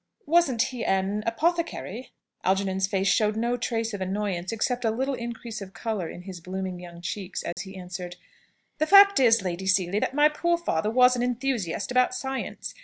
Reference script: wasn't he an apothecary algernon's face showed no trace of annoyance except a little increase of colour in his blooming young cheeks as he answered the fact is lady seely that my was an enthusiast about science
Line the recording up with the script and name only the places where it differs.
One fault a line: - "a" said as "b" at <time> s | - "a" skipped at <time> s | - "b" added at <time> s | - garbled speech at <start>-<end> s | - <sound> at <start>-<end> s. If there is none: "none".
- dropout at 7.5-7.6 s
- "poor father" added at 10.3 s